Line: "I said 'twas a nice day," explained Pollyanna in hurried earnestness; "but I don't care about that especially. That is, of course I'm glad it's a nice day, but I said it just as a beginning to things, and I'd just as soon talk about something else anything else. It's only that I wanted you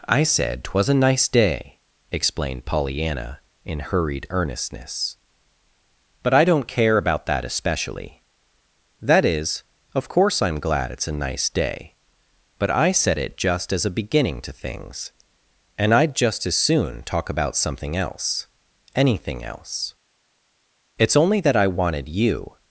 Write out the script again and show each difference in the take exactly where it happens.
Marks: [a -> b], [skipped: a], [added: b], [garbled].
"I said 'twas a nice day," explained Pollyanna in hurried earnestness; "but I don't care about that especially. That is, of course I'm glad it's a nice day, but I said it just as a beginning to things, and I'd just as soon talk about something else anything else. It's only that I wanted you